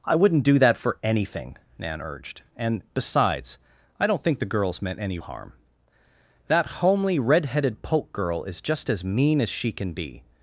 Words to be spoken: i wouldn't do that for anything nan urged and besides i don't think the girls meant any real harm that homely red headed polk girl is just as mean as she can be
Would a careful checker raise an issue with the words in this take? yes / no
yes